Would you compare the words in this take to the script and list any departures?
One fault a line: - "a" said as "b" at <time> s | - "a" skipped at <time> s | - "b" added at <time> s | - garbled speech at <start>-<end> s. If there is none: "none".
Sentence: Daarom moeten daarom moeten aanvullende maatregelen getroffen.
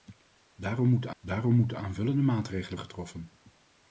none